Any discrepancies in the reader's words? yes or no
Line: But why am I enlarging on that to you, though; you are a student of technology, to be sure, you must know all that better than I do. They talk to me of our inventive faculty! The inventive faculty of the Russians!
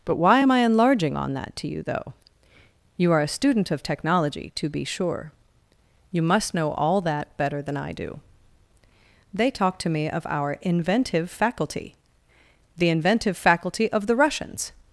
no